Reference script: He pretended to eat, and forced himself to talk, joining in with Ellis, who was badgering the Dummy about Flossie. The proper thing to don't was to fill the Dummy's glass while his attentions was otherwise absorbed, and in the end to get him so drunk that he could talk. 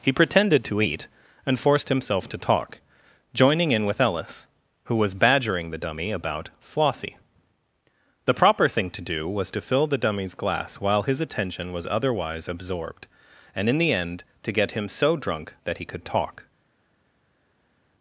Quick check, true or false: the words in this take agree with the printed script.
false